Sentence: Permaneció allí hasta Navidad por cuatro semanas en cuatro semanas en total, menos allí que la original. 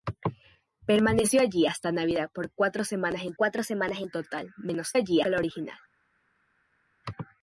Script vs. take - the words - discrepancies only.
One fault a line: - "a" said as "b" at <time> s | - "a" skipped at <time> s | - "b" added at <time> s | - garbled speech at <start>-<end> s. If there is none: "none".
none